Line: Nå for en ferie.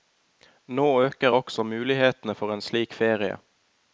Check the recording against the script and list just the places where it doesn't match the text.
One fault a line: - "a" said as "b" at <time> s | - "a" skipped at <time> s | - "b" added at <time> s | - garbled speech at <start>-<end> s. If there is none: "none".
- "øker også mulighetene" added at 1.0 s
- "slik" added at 2.6 s